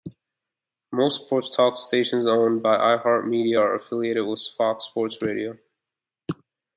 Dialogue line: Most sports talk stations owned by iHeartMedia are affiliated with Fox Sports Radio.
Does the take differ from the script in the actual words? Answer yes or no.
no